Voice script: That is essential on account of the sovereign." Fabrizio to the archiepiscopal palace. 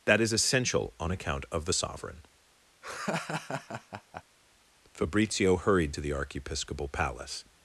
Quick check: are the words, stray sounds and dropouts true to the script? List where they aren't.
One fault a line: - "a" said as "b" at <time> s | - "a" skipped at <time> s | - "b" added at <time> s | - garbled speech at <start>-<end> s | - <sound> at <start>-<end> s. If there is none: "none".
- laugh at 2.8-4.2 s
- "hurried" added at 5.6 s